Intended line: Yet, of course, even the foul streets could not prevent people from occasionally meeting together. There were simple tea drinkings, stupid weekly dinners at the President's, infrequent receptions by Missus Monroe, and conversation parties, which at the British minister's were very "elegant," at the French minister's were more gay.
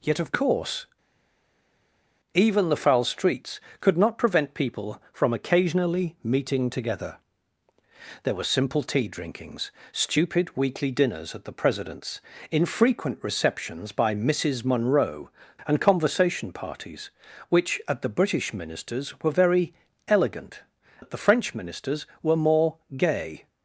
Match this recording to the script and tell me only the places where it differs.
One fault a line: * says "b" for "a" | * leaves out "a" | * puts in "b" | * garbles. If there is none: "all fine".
all fine